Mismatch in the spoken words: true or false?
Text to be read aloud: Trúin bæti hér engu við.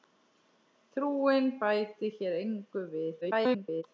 true